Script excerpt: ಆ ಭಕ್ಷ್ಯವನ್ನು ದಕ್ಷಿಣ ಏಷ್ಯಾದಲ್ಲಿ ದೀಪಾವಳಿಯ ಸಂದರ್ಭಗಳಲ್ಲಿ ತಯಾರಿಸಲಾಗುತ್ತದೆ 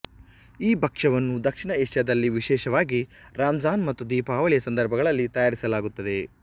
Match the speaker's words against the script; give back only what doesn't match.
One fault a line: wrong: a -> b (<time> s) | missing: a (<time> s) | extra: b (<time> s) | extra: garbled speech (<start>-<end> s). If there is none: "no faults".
wrong: ಆ -> ಈ (0.6 s)
extra: ವಿಶೇಷವಾಗಿ ರಂಜಾನ್ ಮತ್ತು (2.4 s)